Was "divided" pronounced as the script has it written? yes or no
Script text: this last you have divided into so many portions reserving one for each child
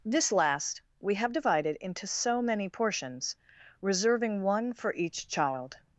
yes